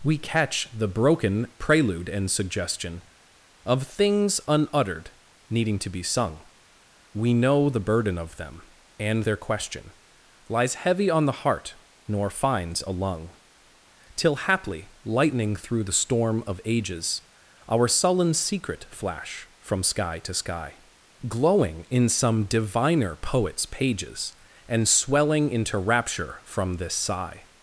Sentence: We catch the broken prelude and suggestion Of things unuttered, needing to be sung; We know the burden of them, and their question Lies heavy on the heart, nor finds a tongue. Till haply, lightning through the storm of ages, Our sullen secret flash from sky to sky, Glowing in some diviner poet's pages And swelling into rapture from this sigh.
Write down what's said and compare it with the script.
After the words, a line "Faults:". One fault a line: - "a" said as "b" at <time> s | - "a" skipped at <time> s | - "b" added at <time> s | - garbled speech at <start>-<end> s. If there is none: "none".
We catch the broken prelude and suggestion Of things unuttered, needing to be sung; We know the burden of them, and their question Lies heavy on the heart, nor finds a lung. Till haply, lightning through the storm of ages, Our sullen secret flash from sky to sky, Glowing in some diviner poet's pages And swelling into rapture from this sigh.
Faults:
- "tongue" said as "lung" at 12.9 s